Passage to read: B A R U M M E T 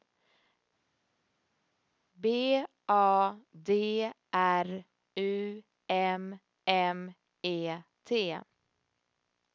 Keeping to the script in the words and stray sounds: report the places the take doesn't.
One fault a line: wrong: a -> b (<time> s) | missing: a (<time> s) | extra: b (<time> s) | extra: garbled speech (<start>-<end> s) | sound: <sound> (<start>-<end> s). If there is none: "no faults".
extra: D (3.5 s)